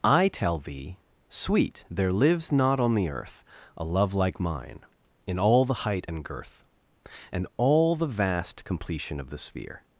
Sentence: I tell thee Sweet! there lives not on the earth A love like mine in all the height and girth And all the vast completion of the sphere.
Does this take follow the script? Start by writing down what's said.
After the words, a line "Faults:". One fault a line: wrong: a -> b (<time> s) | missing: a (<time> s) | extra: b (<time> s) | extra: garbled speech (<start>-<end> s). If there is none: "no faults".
I tell thee Sweet! there lives not on the earth A love like mine in all the height and girth And all the vast completion of the sphere.
Faults:
no faults